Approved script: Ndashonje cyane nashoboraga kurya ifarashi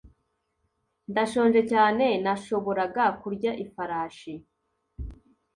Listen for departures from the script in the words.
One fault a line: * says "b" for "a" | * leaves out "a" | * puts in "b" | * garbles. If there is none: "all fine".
all fine